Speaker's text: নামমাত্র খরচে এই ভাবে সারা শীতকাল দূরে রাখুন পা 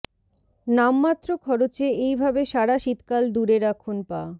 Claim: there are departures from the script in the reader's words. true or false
false